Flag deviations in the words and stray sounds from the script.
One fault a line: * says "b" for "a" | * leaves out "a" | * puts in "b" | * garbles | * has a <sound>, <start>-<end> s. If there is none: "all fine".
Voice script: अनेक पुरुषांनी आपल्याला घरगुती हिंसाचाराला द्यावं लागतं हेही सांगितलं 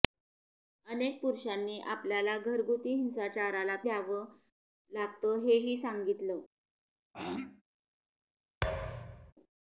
* has a throat clearing, 7.1-7.6 s
* has a thud, 8.6-9.3 s